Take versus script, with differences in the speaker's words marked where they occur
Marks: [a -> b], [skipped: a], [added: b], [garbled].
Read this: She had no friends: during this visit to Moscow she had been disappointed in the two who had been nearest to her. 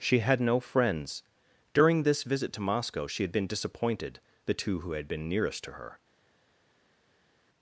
She had no friends: during this visit to Moscow she had been disappointed [skipped: in] the two who had been nearest to her.